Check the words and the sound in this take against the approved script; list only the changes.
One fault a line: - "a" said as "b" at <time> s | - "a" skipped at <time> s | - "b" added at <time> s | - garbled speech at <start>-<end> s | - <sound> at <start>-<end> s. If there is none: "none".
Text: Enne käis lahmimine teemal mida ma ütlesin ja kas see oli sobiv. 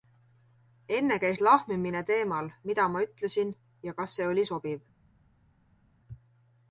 none